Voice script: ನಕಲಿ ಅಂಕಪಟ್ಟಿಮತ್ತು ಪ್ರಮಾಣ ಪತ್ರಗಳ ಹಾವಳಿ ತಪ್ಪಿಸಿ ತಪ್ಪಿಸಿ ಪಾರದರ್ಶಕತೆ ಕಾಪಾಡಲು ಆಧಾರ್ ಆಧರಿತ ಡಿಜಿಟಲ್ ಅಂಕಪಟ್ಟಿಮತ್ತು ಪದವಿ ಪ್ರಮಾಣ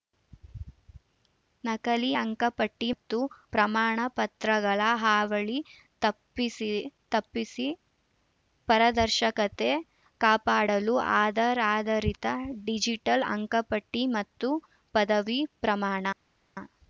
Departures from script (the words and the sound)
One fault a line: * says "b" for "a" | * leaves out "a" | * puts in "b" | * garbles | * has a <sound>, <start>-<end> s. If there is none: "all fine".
all fine